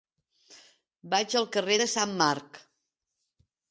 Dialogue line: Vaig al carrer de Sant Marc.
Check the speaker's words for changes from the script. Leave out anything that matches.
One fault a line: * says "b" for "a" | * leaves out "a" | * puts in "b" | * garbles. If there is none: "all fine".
all fine